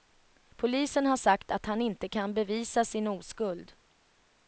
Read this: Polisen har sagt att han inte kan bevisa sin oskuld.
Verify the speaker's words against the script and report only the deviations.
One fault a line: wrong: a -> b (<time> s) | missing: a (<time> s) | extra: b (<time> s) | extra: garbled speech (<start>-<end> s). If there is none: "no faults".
no faults